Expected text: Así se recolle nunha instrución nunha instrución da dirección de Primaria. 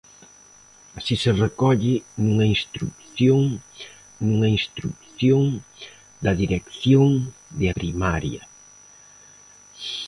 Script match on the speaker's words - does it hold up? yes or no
yes